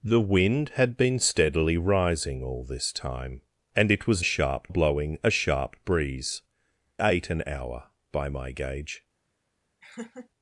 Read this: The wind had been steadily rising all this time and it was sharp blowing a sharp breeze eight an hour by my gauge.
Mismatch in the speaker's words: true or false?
false